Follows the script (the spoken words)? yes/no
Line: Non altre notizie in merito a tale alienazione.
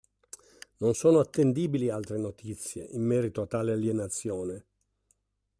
no